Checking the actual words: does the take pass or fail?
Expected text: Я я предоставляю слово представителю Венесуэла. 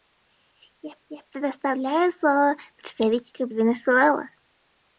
pass